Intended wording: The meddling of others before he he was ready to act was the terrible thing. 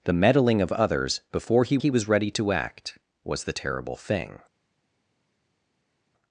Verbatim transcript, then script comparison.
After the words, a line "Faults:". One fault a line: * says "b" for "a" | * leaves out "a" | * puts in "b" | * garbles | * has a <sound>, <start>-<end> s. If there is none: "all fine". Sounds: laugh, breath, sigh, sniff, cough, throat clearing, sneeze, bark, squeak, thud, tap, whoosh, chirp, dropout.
The meddling of others before he he was ready to act was the terrible thing.
Faults:
all fine